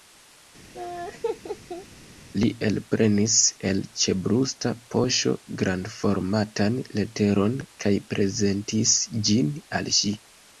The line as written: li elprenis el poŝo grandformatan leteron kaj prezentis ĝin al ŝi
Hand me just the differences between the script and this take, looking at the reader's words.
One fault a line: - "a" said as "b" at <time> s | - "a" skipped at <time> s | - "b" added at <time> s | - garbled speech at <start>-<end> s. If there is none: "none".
- "ĉebrusta" added at 4.0 s